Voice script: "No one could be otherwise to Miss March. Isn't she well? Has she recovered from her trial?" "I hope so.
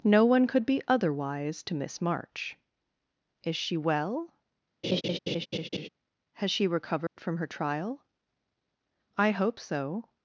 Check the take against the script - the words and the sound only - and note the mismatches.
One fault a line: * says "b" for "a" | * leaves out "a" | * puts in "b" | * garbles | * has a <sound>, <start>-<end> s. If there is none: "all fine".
* says "Is" for "Isn't"
* has a laugh, 4.8-5.9 s
* has a dropout, 7.1-7.2 s